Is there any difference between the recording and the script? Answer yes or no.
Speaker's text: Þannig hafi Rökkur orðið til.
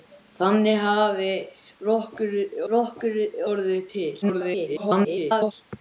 yes